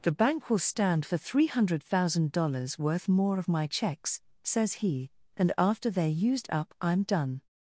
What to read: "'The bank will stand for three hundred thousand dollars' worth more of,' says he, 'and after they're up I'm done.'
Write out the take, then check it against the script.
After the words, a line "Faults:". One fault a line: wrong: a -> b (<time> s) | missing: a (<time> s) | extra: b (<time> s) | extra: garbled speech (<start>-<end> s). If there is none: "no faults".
"'The bank will stand for three hundred thousand dollars' worth more of my checks,' says he, 'and after they're used up I'm done.'
Faults:
extra: my checks (3.5 s)
extra: used (6.1 s)